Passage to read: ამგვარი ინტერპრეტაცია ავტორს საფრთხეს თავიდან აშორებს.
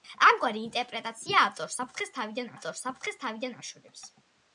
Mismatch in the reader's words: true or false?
true